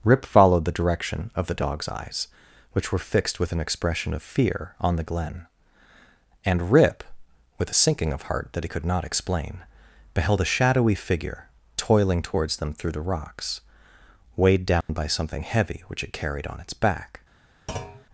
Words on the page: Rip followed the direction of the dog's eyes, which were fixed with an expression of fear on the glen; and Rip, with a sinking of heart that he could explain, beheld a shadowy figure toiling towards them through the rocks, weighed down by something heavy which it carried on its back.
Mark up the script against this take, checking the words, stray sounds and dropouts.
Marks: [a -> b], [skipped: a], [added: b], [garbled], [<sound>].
Rip followed the direction of the dog's eyes, which were fixed with an expression of fear on the glen; and Rip, with a sinking of heart that he could [added: not] explain, beheld a shadowy figure toiling towards them through the rocks, weighed down [dropout] by something heavy which it carried on its back. [thud]